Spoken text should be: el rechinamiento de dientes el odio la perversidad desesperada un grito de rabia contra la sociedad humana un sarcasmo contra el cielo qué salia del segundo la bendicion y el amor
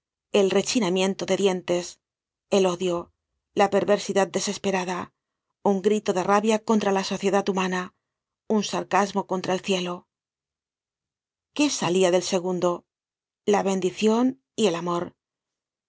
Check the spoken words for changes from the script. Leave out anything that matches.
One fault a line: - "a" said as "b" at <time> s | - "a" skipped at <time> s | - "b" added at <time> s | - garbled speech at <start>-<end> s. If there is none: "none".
none